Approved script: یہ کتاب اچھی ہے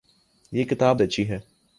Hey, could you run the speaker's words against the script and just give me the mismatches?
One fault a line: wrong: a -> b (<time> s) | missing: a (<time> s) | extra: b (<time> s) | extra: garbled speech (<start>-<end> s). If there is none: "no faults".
no faults